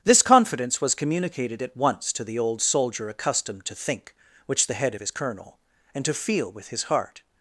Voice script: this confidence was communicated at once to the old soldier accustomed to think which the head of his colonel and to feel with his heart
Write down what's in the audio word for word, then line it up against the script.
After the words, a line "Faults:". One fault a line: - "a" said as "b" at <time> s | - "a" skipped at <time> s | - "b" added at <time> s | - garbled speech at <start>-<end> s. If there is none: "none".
this confidence was communicated at once to the old soldier accustomed to think which the head of his colonel and to feel with his heart
Faults:
none